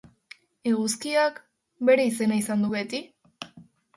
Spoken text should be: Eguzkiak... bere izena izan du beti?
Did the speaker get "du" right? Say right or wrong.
right